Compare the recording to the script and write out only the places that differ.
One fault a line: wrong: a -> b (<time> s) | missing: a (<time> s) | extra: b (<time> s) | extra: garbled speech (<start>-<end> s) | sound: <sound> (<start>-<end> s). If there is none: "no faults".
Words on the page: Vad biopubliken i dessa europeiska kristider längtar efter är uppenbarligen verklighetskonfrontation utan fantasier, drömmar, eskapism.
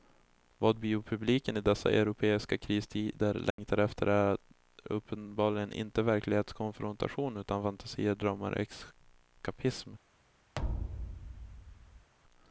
sound: dropout (3.5-3.6 s)
extra: inte (5.7 s)
sound: thud (10.5-12.1 s)